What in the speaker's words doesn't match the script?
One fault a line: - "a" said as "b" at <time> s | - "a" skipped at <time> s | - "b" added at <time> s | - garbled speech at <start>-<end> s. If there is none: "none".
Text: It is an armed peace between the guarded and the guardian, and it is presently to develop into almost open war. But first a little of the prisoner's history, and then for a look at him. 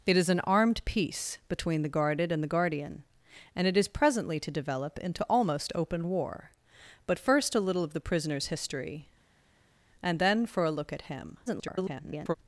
- garbled speech at 11.5-12.4 s